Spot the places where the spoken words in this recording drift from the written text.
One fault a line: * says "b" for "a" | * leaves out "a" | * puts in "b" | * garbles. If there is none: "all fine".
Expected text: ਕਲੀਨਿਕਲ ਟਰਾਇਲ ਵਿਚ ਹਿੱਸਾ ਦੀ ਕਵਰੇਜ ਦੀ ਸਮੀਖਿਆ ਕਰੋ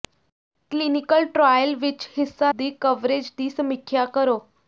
all fine